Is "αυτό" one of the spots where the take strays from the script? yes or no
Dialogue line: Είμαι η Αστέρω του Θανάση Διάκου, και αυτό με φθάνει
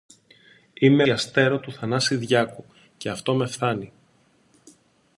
no